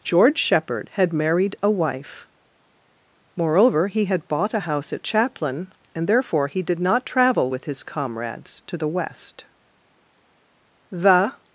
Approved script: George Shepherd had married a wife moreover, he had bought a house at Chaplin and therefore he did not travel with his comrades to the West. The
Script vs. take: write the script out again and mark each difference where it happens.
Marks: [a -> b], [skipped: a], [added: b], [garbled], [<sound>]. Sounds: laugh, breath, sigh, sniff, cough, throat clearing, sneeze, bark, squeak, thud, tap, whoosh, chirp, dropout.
George Shepherd had married a wife moreover, he had bought a house at Chaplin and therefore he did not travel with his comrades to the West. The